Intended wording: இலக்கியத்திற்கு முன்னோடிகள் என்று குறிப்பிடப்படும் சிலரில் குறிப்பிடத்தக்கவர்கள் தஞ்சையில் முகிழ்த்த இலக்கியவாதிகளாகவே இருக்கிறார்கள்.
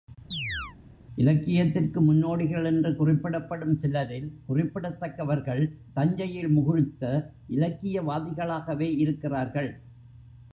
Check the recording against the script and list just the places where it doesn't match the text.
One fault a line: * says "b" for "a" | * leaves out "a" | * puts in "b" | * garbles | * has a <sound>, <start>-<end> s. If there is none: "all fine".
* has a chirp, 0.3-0.8 s